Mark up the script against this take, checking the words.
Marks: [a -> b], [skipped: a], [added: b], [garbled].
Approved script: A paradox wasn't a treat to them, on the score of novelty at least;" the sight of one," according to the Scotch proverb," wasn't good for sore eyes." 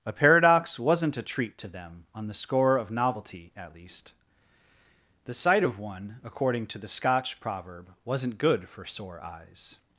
A paradox wasn't a treat to them, on the score of novelty at least;" the sight of one," according to the Scotch proverb," wasn't good for sore eyes."